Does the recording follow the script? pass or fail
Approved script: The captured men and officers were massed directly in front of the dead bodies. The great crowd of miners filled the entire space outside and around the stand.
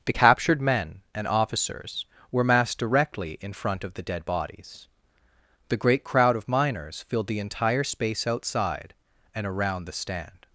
pass